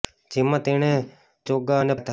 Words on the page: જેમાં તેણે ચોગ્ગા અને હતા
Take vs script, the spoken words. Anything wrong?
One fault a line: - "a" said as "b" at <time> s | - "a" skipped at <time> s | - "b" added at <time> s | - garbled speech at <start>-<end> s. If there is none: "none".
none